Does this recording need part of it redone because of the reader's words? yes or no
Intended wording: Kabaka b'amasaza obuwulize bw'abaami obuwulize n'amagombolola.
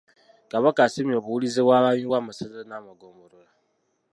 yes